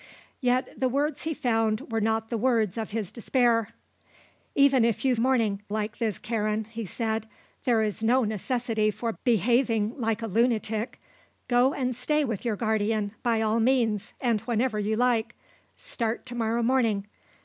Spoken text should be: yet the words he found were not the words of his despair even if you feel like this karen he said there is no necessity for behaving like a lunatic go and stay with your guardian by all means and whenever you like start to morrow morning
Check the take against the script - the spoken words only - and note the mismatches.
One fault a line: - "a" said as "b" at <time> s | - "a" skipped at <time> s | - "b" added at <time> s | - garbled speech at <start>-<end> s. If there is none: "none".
- "feel" said as "morning" at 5.2 s